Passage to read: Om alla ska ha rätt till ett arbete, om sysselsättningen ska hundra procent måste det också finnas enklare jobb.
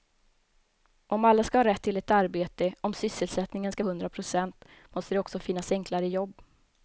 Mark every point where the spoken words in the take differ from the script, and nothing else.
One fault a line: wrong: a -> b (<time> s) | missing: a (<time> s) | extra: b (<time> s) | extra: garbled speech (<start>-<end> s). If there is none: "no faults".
no faults